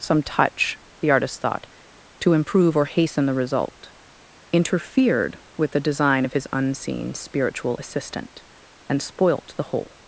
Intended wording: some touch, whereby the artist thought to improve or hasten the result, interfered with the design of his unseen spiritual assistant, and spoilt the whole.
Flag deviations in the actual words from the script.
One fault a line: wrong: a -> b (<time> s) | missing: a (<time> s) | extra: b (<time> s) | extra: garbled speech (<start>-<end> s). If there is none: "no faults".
missing: whereby (0.8 s)